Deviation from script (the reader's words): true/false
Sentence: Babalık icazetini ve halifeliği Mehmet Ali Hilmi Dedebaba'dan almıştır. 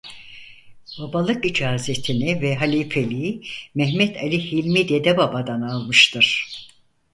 false